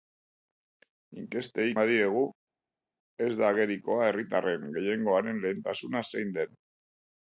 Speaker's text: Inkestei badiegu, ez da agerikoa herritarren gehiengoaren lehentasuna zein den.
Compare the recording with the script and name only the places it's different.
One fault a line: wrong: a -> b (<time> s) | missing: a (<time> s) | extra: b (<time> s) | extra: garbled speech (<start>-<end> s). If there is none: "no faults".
no faults